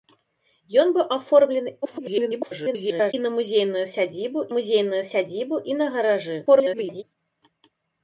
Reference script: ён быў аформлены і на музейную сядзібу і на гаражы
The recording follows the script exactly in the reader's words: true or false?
false